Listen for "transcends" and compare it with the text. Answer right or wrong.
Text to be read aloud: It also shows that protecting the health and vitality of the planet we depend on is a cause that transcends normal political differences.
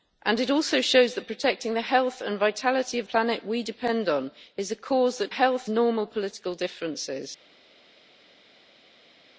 wrong